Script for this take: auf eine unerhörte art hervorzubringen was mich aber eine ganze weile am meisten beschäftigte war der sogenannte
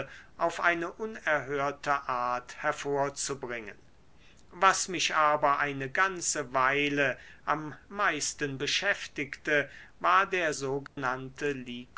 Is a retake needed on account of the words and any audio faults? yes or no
yes